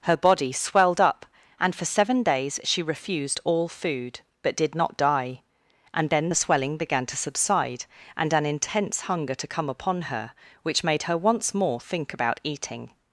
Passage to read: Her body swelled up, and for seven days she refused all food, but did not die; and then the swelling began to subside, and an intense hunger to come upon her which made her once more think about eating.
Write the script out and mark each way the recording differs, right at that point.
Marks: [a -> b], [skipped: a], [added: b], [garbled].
Her body swelled up, and for seven days she refused all food, but did not die; and then the swelling began to subside, and an intense hunger to come upon her which made her once more think about eating.